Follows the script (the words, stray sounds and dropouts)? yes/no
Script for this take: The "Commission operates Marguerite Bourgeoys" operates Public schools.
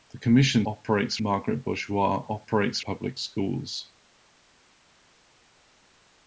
yes